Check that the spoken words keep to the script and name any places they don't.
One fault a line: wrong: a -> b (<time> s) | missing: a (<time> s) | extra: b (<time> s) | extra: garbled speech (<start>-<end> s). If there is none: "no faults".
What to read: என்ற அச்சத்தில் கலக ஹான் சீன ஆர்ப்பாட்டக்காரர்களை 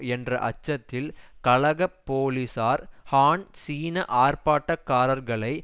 extra: போலீசார் (2.0 s)